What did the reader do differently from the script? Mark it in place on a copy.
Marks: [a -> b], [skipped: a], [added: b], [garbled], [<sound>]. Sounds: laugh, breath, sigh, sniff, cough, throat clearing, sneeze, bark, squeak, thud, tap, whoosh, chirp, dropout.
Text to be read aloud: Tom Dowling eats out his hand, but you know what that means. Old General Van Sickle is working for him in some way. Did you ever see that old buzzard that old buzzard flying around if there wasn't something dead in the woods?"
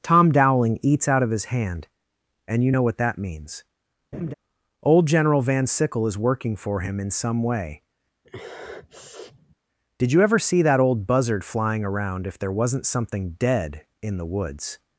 Tom Dowling eats out [added: of] his hand, [but -> and] you know what that means. [laugh] Old General Van Sickle is working for him in some way. [sniff] Did you ever see that old buzzard [skipped: that old buzzard] flying around if there wasn't something dead in the woods?"